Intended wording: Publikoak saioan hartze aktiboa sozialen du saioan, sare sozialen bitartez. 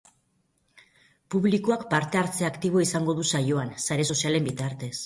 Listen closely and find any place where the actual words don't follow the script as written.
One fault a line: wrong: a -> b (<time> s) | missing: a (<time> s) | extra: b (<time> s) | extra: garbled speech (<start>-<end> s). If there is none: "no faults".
wrong: saioan -> parte (1.9 s)
wrong: sozialen -> izango (2.9 s)